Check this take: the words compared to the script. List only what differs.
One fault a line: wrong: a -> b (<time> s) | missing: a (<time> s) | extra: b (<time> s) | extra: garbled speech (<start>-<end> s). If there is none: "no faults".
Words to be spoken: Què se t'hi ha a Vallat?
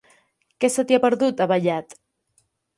extra: perdut (1.1 s)